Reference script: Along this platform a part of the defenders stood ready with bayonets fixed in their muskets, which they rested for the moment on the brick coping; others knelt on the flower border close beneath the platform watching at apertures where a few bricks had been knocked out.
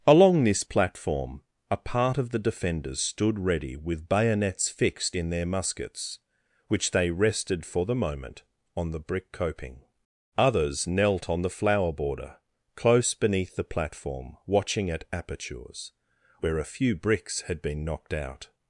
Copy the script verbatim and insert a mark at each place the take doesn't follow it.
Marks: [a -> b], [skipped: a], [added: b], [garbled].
Along this platform a part of the defenders stood ready with bayonets fixed in their muskets, which they rested for the moment on the brick coping; others knelt on the flower border close beneath the platform watching at apertures where a few bricks had been knocked out.